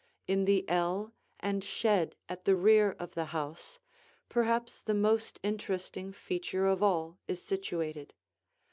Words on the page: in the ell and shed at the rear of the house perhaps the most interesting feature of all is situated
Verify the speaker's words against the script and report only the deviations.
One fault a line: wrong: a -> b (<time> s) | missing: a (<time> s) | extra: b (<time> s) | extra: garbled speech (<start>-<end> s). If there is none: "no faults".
no faults